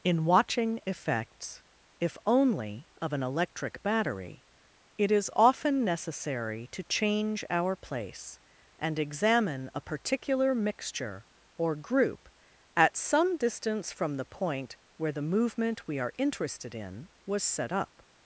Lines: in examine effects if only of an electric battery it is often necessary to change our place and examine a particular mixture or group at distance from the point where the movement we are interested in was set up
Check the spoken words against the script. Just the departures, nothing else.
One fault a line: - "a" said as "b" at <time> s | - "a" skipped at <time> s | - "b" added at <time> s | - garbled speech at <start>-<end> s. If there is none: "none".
- "examine" said as "watching" at 0.2 s
- "some" added at 13.0 s